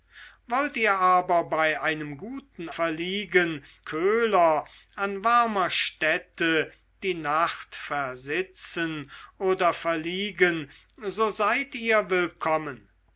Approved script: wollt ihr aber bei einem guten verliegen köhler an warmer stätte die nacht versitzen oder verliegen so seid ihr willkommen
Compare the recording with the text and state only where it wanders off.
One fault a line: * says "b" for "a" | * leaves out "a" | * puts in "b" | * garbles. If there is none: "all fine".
all fine